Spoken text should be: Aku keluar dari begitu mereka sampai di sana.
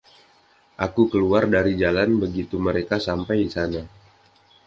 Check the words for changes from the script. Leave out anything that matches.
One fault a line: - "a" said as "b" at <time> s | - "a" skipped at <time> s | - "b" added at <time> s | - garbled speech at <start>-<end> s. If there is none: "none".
- "jalan" added at 1.8 s